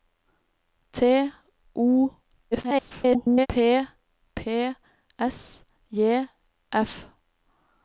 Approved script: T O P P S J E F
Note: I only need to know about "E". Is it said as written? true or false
false